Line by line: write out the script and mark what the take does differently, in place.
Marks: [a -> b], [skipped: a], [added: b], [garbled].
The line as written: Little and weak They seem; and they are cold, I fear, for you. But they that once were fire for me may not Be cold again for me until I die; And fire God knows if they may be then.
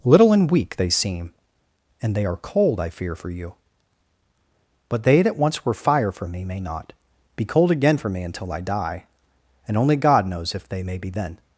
Little and weak They seem; and they are cold, I fear, for you. But they that once were fire for me may not Be cold again for me until I die; And [fire -> only] God knows if they may be then.